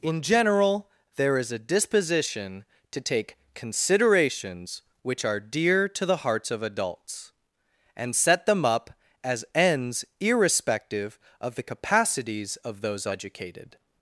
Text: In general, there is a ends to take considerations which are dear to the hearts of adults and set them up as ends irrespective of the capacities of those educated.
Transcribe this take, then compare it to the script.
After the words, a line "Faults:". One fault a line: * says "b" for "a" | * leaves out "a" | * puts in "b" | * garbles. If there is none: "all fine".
In general, there is a disposition to take considerations which are dear to the hearts of adults and set them up as ends irrespective of the capacities of those educated.
Faults:
* says "disposition" for "ends"